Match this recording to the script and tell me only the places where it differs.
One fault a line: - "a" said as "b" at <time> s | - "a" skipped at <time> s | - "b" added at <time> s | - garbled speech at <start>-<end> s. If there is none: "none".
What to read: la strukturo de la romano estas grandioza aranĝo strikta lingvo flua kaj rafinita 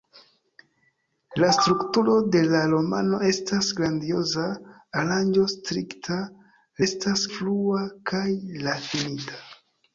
- "lingvo" said as "estas" at 6.9 s